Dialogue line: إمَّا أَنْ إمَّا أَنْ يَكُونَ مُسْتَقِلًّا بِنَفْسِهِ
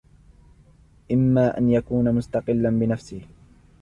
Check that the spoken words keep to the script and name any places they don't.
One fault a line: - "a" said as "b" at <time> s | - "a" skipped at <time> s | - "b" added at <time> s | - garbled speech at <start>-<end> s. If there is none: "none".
- "إمَّا أَنْ" skipped at 1.7 s